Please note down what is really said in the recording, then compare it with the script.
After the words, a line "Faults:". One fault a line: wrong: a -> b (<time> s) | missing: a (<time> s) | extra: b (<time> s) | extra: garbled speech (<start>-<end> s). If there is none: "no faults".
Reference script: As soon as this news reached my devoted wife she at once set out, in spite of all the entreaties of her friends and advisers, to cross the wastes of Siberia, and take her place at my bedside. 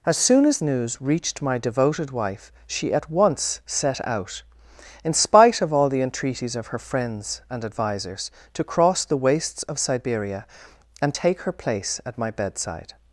As soon as news reached my devoted wife she at once set out, in spite of all the entreaties of her friends and advisers, to cross the wastes of Siberia, and take her place at my bedside.
Faults:
missing: this (0.6 s)